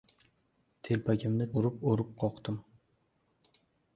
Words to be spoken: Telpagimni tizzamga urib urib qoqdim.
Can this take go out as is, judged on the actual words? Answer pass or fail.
fail